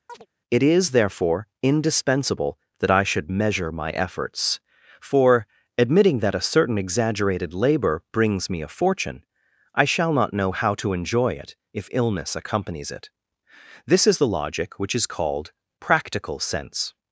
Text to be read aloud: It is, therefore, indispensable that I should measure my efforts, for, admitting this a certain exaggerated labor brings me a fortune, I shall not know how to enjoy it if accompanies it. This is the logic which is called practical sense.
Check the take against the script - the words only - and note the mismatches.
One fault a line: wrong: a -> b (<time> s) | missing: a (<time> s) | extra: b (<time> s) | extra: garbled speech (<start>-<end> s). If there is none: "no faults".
wrong: this -> that (6.2 s)
extra: illness (11.9 s)